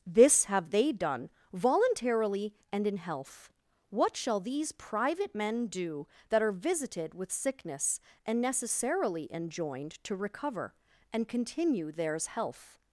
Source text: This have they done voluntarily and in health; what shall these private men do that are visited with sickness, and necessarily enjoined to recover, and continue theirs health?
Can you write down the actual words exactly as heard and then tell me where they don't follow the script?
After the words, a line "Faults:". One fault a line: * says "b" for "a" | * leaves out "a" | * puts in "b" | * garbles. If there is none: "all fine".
This have they done voluntarily and in health; what shall these private men do that are visited with sickness, and necessarily enjoined to recover, and continue theirs health?
Faults:
all fine